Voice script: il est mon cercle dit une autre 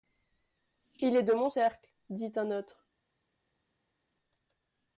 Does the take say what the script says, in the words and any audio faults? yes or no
no